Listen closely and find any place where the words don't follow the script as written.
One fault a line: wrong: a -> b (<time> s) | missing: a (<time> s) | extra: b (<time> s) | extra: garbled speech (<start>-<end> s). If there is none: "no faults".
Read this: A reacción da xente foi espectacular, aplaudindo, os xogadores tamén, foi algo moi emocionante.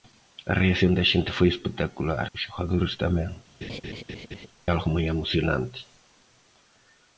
missing: aplaudindo (2.3 s)
missing: foi (3.3 s)